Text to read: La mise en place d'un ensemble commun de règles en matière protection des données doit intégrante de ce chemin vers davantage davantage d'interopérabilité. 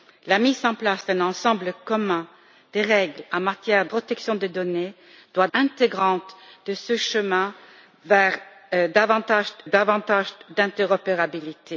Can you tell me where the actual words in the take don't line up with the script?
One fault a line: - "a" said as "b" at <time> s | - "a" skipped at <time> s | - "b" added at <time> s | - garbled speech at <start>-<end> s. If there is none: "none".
none